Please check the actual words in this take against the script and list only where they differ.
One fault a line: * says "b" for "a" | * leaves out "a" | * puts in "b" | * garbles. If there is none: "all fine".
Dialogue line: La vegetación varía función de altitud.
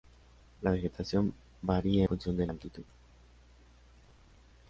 all fine